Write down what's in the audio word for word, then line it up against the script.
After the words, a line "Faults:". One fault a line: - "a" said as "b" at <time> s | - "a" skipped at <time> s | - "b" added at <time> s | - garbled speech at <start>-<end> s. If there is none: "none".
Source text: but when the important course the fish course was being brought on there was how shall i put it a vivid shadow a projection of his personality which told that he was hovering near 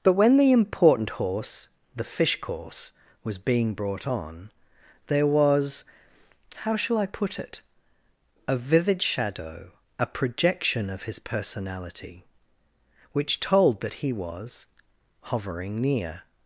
but when the important horse the fish course was being brought on there was how shall i put it a vivid shadow a projection of his personality which told that he was hovering near
Faults:
- "course" said as "horse" at 1.1 s